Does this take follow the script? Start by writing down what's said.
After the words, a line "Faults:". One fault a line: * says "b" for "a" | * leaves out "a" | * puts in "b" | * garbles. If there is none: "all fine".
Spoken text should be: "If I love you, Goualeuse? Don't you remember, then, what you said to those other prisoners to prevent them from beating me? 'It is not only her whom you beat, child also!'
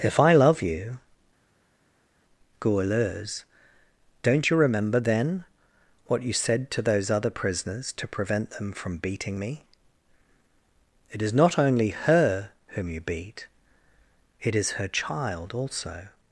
"If I love you, Goualeuse? Don't you remember, then, what you said to those other prisoners to prevent them from beating me? 'It is not only her whom you beat, it is her child also!'
Faults:
* puts in "it is her"